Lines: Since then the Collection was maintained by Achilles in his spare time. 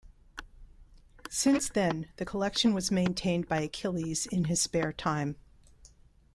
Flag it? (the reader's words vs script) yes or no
no